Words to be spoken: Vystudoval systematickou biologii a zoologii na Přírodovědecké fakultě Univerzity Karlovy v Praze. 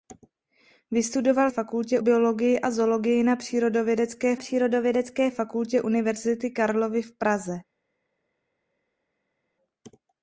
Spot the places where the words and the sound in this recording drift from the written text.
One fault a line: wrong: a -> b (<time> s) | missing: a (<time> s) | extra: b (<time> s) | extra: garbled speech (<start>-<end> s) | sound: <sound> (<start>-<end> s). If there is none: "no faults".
wrong: systematickou -> fakultě (1.5 s)
extra: Přírodovědecké (4.4 s)